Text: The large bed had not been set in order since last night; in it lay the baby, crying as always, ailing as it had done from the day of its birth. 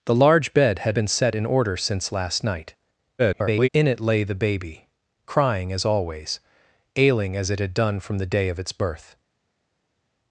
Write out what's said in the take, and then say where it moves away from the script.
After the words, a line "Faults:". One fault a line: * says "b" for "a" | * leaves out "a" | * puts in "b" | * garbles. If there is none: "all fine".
The large bed had been set in order since last night; [garbled] in it lay the baby, crying as always, ailing as it had done from the day of its birth.
Faults:
* leaves out "not"
* garbles